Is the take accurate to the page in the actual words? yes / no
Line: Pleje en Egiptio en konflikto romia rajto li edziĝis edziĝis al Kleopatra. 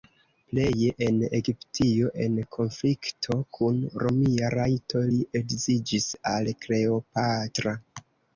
no